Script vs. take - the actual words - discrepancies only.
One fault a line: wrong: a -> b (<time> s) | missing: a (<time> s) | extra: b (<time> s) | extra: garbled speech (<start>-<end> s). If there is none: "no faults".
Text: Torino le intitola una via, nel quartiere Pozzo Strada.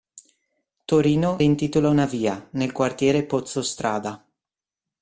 missing: le (1.4 s)